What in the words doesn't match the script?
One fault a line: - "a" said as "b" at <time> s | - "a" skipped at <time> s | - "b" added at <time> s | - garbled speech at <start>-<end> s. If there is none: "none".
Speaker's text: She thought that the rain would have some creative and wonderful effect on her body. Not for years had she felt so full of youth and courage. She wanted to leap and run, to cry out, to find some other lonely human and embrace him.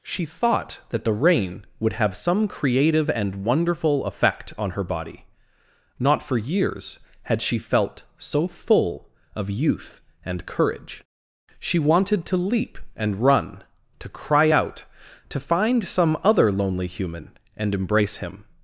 none